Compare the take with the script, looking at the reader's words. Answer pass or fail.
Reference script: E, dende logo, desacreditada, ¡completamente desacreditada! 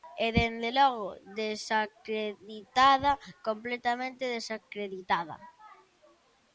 pass